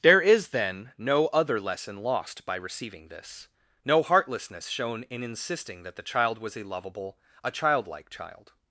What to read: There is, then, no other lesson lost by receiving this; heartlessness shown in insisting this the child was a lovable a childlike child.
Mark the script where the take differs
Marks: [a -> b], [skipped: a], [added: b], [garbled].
There is, then, no other lesson lost by receiving this; [added: no] heartlessness shown in insisting [this -> that] the child was a lovable a childlike child.